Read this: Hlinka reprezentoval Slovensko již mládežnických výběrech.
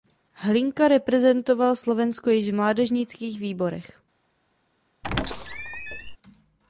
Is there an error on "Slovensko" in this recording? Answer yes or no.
no